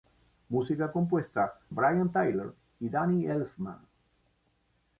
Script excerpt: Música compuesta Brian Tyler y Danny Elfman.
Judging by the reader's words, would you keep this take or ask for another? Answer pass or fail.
pass